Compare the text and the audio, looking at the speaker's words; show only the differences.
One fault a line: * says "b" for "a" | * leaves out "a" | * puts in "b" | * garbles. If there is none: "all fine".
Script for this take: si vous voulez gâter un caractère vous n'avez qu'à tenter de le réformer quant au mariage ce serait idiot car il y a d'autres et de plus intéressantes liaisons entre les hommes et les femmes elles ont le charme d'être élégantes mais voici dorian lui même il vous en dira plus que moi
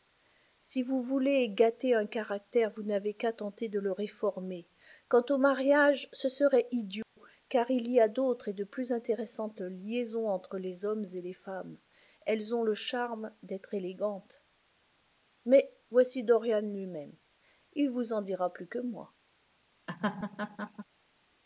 all fine